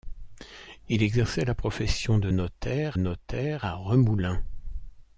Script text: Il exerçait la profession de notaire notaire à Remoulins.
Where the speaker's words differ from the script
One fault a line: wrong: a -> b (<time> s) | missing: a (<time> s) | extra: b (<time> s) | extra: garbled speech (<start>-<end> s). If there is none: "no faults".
no faults